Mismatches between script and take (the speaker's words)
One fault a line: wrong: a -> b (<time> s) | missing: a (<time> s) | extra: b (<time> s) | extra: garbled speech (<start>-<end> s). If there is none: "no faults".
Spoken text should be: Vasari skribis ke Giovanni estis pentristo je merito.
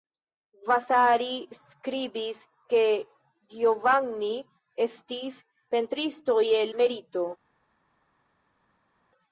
no faults